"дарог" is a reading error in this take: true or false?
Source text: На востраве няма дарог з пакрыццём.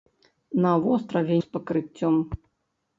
true